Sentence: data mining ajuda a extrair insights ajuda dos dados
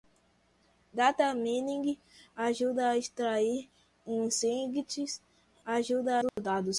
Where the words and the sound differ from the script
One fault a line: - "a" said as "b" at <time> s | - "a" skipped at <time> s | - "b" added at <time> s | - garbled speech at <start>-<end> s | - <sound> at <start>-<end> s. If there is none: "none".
- dropout at 6.3-6.4 s